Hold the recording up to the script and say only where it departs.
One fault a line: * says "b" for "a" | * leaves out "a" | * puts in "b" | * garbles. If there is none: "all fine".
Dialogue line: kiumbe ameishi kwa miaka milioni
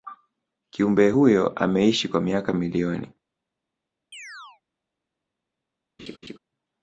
* puts in "huyo"